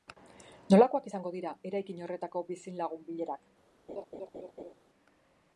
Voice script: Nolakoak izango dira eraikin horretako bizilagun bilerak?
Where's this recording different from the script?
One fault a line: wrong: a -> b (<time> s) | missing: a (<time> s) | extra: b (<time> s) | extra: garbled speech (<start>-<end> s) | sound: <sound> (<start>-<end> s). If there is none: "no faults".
sound: laugh (3.9-4.7 s)